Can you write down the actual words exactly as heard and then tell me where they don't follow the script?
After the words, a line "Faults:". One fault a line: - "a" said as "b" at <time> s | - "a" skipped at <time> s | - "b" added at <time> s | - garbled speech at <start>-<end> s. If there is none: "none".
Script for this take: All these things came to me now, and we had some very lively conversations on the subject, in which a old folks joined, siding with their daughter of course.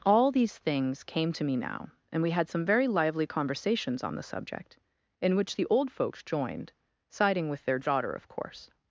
All these things came to me now, and we had some very lively conversations on the subject, in which the old folks joined, siding with their daughter of course.
Faults:
- "a" said as "the" at 5.5 s